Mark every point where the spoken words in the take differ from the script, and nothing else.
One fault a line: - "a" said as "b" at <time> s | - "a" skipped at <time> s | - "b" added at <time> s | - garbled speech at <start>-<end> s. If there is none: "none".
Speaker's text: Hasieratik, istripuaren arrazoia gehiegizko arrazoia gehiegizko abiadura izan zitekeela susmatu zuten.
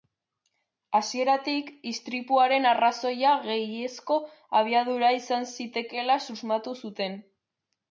- "arrazoia gehiegizko" skipped at 4.2 s